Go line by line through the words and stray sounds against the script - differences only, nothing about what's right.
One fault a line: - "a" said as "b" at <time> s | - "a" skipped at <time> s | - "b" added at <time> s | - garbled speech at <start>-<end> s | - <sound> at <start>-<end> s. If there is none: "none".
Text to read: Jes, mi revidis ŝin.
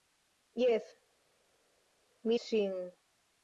- "revidis" skipped at 2.4 s